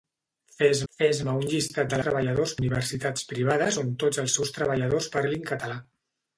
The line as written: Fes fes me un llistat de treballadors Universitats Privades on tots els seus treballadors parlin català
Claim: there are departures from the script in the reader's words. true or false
false